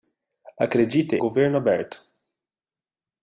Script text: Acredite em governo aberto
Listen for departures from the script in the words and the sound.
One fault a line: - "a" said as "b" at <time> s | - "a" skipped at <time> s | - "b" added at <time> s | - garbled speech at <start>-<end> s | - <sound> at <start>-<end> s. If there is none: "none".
- "em" skipped at 1.2 s